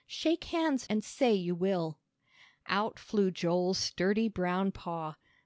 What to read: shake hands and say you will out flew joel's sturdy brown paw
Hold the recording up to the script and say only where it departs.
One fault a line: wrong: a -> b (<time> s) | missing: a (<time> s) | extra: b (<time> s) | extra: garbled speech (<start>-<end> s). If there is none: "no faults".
no faults